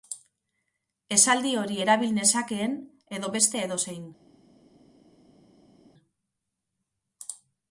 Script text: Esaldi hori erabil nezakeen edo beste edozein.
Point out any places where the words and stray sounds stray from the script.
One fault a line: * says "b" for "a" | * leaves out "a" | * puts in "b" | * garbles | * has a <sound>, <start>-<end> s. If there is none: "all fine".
all fine